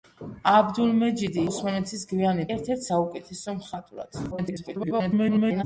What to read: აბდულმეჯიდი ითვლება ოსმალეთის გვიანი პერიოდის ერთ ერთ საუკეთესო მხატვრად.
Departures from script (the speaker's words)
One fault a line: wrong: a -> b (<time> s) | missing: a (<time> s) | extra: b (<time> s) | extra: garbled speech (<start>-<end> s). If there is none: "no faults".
missing: ითვლება (1.4 s)
missing: პერიოდის (2.5 s)
extra: garbled speech (4.3-5.6 s)